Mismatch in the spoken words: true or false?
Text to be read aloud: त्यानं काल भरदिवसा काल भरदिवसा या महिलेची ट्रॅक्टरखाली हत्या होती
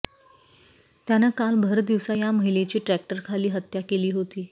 true